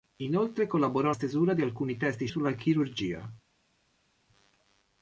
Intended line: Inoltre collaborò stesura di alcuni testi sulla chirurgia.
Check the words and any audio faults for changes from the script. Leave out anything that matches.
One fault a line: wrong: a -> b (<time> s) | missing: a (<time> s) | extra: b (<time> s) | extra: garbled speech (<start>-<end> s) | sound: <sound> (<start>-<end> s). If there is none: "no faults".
no faults